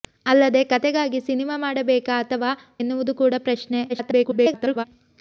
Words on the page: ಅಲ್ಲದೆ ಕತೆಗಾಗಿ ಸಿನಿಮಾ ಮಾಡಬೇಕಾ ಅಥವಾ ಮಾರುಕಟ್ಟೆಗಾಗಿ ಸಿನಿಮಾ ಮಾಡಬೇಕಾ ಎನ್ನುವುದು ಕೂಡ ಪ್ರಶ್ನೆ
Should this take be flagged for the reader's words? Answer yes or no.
yes